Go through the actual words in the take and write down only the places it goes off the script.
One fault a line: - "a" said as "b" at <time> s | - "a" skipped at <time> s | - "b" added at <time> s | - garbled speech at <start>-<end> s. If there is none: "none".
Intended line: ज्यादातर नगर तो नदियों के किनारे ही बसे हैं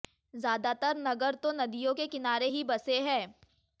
none